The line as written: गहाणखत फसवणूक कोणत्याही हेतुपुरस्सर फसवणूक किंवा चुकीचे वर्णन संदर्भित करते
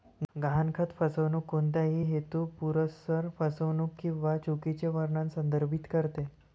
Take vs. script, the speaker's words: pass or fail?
pass